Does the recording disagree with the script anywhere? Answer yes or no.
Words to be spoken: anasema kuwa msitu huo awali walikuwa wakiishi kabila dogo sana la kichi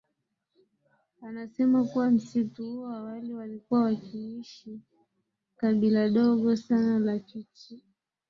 no